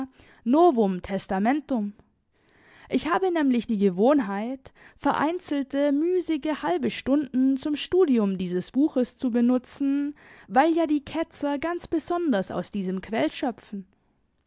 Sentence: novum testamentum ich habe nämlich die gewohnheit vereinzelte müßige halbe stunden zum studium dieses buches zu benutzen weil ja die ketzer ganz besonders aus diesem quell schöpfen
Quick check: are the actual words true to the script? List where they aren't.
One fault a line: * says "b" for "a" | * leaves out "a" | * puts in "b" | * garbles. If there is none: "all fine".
all fine